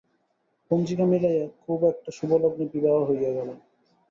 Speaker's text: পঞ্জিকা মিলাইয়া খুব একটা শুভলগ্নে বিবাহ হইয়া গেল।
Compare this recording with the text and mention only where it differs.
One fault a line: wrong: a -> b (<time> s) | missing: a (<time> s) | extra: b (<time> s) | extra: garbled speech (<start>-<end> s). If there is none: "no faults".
no faults